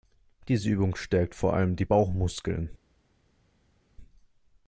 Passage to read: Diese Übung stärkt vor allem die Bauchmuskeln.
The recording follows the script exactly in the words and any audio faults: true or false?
true